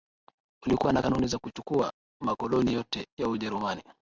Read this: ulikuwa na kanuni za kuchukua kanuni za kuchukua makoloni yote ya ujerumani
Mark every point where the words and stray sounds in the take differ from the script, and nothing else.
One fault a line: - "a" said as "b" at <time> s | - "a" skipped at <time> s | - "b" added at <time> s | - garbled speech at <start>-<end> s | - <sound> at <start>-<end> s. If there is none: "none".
- "kanuni za kuchukua" skipped at 1.9 s